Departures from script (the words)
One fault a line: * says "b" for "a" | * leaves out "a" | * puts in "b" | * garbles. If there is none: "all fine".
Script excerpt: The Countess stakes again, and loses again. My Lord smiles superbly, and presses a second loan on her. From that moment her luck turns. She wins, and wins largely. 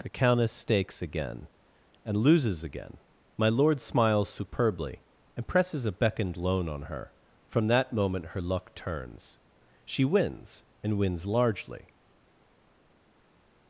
* says "beckoned" for "second"